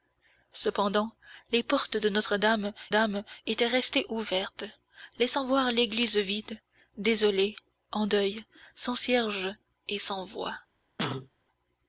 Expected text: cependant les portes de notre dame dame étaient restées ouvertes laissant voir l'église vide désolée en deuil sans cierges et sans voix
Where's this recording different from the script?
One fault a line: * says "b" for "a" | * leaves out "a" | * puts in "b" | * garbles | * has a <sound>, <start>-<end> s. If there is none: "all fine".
* has a cough, 11.0-11.3 s